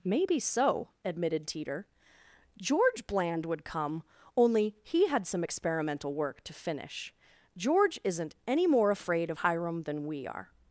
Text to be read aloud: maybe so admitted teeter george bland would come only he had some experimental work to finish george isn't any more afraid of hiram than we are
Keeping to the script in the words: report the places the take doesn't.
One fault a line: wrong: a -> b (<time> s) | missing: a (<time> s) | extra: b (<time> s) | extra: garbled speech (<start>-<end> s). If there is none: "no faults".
no faults